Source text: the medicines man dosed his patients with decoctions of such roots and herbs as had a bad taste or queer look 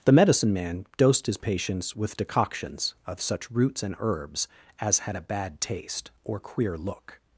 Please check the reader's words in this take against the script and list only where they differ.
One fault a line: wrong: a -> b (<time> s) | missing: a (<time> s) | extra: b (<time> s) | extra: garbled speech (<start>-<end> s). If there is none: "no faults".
wrong: medicines -> medicine (0.1 s)